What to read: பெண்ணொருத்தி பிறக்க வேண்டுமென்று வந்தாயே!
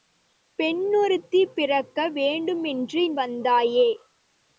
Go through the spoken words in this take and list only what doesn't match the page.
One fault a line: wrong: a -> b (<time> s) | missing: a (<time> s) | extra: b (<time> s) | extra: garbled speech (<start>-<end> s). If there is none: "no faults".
no faults